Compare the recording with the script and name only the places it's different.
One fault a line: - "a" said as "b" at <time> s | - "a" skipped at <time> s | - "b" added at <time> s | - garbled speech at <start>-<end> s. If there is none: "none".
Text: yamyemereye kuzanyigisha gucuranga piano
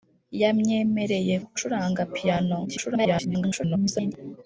- "kuzanyigisha" skipped at 1.4 s
- garbled speech at 2.6-4.1 s